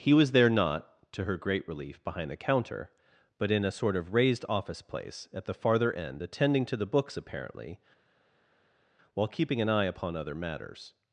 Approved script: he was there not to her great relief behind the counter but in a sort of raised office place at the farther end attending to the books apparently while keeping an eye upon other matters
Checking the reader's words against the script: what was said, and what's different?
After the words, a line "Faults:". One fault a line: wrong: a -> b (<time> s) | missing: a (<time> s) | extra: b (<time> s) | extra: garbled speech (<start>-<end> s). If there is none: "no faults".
he was there not to her great relief behind the counter but in a sort of raised office place at the farther end attending to the books apparently while keeping an eye upon other matters
Faults:
no faults